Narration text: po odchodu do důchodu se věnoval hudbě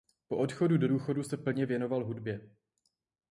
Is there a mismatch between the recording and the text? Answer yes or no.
yes